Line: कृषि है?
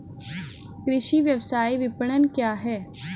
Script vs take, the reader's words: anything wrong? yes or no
yes